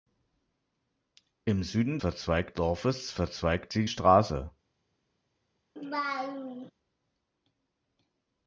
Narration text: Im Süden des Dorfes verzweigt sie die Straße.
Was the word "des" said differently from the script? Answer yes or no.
yes